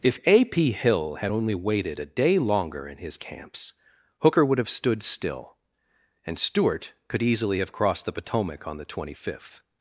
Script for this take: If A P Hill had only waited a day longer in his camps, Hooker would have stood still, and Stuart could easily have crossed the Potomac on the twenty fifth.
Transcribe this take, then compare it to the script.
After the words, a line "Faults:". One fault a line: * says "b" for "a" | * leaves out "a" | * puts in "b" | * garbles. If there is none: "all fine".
If A P Hill had only waited a day longer in his camps, Hooker would have stood still, and Stuart could easily have crossed the Potomac on the twenty fifth.
Faults:
all fine